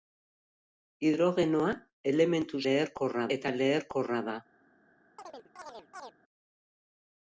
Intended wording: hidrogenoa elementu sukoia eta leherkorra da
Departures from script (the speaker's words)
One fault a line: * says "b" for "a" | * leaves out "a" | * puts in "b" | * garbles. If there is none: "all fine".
* says "leherkorra" for "sukoia"